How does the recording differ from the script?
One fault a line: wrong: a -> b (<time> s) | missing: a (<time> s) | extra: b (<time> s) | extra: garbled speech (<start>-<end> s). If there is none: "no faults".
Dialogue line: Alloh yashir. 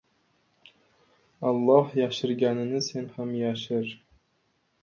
extra: yashirganini sen ham (1.9 s)